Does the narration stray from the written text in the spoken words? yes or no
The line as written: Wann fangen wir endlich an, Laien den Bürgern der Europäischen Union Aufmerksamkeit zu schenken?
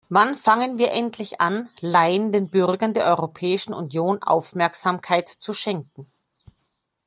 no